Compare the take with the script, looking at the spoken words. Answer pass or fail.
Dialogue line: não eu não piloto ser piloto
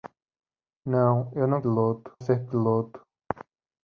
pass